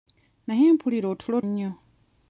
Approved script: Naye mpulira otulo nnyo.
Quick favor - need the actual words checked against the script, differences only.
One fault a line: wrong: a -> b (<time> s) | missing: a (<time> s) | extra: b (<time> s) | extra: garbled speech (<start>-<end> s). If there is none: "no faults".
no faults